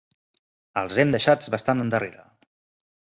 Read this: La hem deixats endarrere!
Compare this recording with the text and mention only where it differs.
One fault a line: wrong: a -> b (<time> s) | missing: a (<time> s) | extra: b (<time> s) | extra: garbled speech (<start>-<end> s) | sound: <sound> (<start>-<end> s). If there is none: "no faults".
wrong: La -> Els (0.8 s)
extra: bastant (1.6 s)